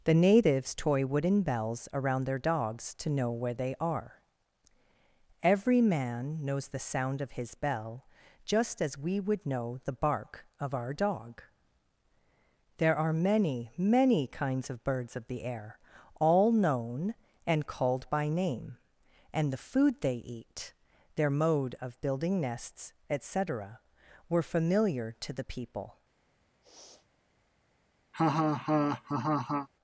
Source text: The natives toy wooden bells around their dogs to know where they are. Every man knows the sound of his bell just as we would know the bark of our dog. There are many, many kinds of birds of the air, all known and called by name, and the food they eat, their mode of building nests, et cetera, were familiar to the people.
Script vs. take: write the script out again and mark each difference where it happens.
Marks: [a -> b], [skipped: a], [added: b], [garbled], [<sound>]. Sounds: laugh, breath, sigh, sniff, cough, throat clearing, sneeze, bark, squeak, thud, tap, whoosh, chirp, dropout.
The natives toy wooden bells around their dogs to know where they are. Every man knows the sound of his bell just as we would know the bark of our dog. There are many, many kinds of birds of the air, all known and called by name, and the food they eat, their mode of building nests, et cetera, were familiar to the people. [sniff] [laugh]